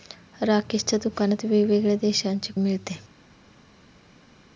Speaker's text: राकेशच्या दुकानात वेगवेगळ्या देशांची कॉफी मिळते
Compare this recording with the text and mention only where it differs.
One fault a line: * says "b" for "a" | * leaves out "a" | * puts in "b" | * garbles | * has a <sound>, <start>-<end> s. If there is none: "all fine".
* leaves out "कॉफी"